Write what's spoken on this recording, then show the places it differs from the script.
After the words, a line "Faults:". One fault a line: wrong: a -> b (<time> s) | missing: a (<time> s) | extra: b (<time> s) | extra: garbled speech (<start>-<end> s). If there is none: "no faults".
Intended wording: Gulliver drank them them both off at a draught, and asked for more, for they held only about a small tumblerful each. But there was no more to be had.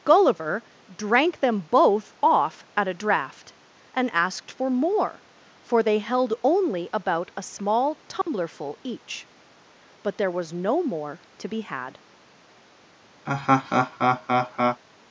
Gulliver drank them both off at a draught, and asked for more, for they held only about a small tumblerful each. But there was no more to be had.
Faults:
missing: them (1.6 s)